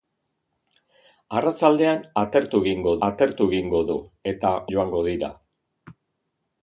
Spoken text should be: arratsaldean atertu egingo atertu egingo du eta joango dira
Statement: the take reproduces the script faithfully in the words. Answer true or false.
true